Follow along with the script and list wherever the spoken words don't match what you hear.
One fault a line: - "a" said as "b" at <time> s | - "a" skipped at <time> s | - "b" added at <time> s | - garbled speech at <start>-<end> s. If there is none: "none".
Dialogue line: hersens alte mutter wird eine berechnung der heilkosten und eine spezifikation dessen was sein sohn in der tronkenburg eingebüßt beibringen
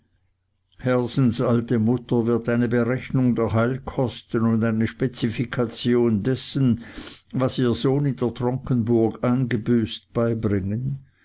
- "sein" said as "ihr" at 7.6 s